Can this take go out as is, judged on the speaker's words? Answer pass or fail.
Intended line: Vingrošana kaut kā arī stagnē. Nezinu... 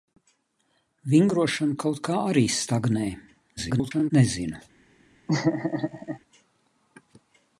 fail